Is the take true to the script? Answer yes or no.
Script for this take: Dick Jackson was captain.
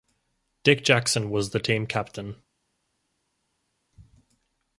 no